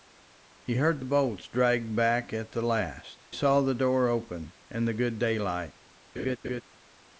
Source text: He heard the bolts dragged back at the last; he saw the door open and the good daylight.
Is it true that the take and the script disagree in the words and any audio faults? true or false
true